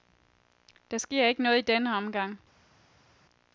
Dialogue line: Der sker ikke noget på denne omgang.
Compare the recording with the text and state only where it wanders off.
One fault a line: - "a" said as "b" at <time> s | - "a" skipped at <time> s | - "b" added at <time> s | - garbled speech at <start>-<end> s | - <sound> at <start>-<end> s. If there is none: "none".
- "på" said as "i" at 1.6 s